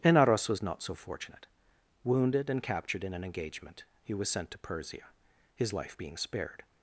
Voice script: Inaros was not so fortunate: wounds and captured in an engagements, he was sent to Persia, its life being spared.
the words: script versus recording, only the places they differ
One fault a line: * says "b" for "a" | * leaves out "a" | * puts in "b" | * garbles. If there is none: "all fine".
* says "wounded" for "wounds"
* says "engagement" for "engagements"
* says "his" for "its"